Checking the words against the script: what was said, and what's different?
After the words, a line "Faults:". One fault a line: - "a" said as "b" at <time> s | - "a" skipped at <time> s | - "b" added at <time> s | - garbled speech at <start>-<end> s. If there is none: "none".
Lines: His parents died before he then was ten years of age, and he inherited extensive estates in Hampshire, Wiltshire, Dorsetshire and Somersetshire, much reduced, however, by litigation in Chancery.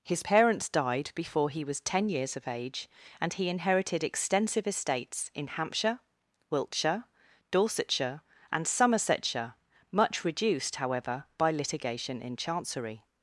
His parents died before he was ten years of age, and he inherited extensive estates in Hampshire, Wiltshire, Dorsetshire and Somersetshire, much reduced, however, by litigation in Chancery.
Faults:
- "then" skipped at 1.6 s